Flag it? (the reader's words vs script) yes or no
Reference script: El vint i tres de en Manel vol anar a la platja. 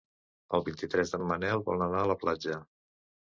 no